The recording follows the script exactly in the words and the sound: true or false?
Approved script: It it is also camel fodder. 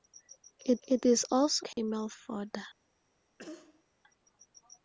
false